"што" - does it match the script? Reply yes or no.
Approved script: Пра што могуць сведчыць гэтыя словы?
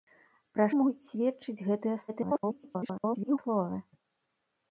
no